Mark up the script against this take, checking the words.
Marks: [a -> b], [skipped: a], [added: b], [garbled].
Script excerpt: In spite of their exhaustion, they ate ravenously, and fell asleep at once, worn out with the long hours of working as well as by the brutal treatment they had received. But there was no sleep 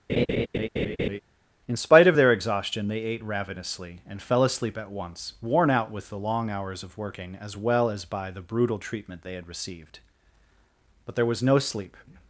In spite of their exhaustion, they ate ravenously, and fell asleep at once, worn out with the long hours of working as well as by the brutal treatment they had received. But there was no sleep